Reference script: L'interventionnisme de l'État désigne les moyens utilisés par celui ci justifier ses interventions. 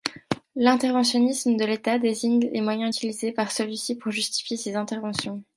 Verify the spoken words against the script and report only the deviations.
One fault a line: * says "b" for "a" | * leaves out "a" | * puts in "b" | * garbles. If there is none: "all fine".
* puts in "pour"